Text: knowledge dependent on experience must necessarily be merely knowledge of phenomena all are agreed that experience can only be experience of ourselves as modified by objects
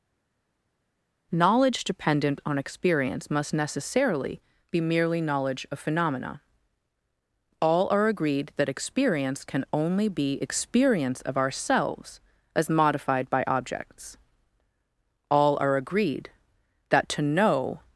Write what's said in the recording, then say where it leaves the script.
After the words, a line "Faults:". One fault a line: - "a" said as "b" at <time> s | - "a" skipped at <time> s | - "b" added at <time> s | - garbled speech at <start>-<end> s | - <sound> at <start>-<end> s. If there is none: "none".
knowledge dependent on experience must necessarily be merely knowledge of phenomena all are agreed that experience can only be experience of ourselves as modified by objects all are agreed that to know
Faults:
- "all are agreed that to know" added at 15.3 s